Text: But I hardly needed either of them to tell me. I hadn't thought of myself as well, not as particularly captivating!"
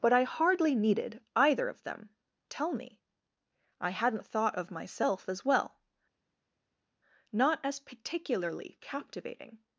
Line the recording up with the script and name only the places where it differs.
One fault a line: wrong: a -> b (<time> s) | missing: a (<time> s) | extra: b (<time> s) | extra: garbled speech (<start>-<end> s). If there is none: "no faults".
missing: to (2.1 s)